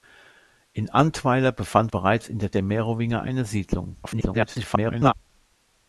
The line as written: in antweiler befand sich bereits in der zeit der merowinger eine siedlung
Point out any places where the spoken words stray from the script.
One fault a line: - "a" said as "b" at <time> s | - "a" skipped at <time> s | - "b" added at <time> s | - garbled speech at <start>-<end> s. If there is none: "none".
- "sich" skipped at 1.9 s
- "zeit" skipped at 2.5 s
- garbled speech at 4.0-5.1 s